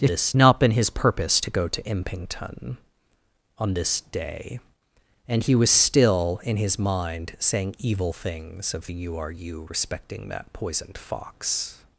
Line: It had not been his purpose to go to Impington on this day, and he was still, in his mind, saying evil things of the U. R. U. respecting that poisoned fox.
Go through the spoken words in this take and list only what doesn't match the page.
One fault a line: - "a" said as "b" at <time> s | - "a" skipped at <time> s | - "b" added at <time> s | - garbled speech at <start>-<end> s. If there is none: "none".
- "had" said as "this" at 0.1 s